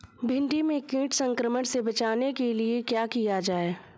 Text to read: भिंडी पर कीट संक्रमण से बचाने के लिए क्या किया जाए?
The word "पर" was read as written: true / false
false